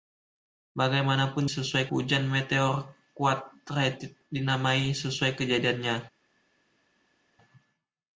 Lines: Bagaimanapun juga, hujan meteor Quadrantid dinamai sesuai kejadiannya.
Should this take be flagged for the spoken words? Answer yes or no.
yes